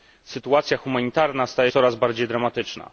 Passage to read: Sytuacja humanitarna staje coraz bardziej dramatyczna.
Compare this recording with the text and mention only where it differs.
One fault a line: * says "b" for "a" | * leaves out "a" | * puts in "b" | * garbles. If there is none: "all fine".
all fine